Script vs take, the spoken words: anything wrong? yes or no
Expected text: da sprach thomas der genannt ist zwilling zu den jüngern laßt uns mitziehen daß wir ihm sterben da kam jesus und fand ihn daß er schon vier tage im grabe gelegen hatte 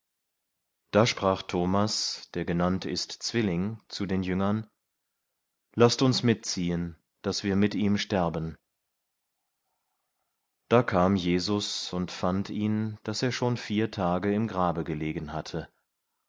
yes